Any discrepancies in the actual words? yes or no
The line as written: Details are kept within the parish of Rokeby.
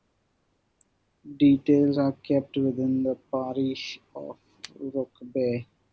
no